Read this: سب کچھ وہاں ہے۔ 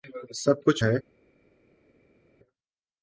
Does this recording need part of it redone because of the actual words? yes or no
yes